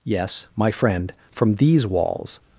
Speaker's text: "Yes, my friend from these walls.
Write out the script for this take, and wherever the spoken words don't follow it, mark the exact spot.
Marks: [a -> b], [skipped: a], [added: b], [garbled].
"Yes, my friend from these walls.